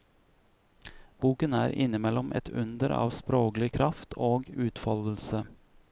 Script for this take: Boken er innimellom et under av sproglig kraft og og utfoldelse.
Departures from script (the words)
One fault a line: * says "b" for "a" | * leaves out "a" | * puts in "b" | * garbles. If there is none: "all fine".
* leaves out "og"